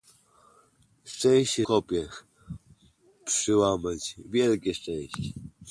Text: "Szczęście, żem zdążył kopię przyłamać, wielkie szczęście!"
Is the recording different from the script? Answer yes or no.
yes